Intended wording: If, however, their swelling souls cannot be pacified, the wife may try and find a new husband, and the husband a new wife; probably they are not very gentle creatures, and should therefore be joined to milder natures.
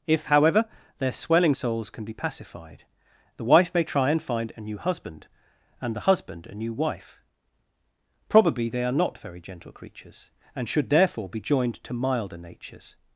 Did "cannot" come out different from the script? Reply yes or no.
yes